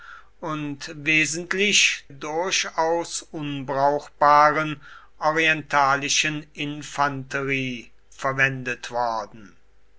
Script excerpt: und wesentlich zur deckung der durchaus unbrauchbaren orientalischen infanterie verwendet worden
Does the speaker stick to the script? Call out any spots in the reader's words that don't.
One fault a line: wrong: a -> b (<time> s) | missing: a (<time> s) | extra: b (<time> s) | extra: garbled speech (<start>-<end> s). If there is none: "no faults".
missing: zur deckung der (2.0 s)